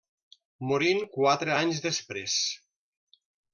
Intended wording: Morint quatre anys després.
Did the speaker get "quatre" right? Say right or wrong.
right